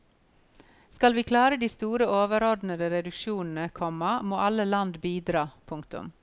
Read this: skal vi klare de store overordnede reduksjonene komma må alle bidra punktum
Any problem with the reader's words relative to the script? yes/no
yes